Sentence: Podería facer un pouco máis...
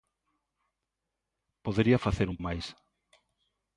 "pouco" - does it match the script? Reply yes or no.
no